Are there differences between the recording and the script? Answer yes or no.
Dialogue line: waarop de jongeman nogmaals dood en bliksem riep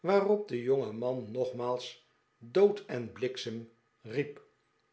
no